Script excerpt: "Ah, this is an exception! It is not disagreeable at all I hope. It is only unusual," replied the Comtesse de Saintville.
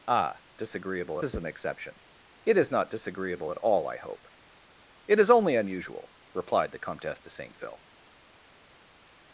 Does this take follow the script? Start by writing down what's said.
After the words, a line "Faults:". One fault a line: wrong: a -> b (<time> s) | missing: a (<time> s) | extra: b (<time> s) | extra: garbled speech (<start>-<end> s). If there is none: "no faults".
"Ah, disagreeable is an exception! It is not disagreeable at all I hope. It is only unusual," replied the Comtesse de Saintville.
Faults:
wrong: this -> disagreeable (0.6 s)